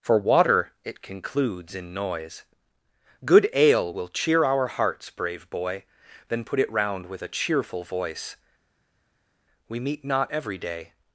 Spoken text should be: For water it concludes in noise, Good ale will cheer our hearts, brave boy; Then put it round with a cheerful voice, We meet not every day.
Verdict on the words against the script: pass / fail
pass